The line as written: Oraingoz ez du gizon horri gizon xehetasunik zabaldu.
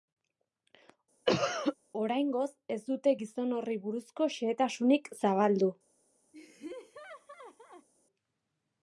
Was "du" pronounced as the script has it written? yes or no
no